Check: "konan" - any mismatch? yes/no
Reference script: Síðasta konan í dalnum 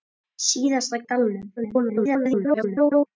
yes